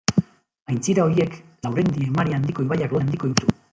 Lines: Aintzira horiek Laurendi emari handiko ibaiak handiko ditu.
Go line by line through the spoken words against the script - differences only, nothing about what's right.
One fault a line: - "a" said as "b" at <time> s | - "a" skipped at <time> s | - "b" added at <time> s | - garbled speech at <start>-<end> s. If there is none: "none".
none